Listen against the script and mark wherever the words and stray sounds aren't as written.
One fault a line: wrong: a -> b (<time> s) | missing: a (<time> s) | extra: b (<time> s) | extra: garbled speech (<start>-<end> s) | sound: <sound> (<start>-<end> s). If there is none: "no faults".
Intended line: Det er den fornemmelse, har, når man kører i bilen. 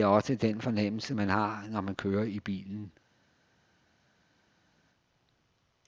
extra: også (0.1 s)
extra: man (1.1 s)